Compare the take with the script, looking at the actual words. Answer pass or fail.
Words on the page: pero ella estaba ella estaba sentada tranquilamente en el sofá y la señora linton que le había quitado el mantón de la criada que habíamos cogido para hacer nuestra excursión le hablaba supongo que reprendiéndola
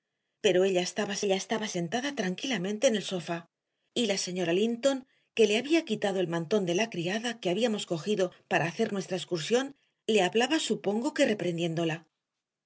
pass